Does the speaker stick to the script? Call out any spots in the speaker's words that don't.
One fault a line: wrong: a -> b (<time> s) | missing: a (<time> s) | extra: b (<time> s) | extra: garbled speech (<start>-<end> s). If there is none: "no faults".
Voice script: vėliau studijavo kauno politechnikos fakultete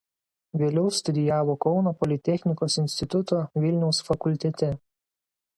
extra: instituto vilniaus (2.9 s)